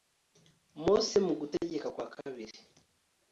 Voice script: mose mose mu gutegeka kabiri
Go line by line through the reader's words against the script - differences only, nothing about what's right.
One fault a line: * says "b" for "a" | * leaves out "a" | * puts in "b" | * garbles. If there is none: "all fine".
* leaves out "mose"
* puts in "kwa"